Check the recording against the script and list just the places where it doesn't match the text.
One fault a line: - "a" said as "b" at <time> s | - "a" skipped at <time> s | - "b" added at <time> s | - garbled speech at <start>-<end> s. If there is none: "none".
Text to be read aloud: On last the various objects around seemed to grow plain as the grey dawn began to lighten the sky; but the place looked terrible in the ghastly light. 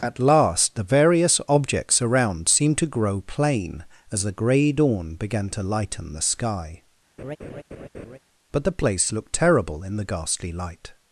- "On" said as "At" at 0.0 s